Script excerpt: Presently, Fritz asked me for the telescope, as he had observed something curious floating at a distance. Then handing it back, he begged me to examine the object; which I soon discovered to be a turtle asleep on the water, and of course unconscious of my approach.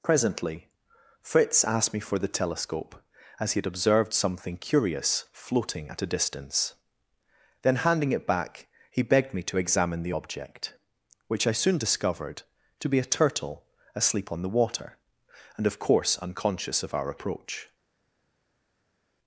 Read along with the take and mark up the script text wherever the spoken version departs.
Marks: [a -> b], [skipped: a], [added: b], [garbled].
Presently, Fritz asked me for the telescope, as he had observed something curious floating at a distance. Then handing it back, he begged me to examine the object; which I soon discovered to be a turtle asleep on the water, and of course unconscious of [my -> our] approach.